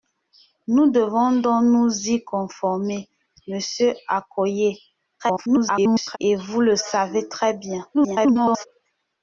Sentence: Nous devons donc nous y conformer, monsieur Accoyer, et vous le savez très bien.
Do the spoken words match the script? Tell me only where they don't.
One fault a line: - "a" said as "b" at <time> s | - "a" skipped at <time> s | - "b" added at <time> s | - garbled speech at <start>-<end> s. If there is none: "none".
- garbled speech at 5.2-6.2 s
- garbled speech at 7.9-8.7 s